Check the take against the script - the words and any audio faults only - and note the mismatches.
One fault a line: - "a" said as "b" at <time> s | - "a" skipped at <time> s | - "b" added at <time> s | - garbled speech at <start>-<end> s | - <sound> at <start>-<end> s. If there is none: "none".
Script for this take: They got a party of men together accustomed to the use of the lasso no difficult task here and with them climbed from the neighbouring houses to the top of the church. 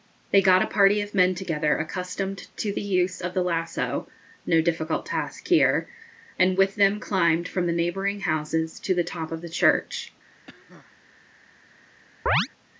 - cough at 10.5-10.9 s
- chirp at 12.3-12.5 s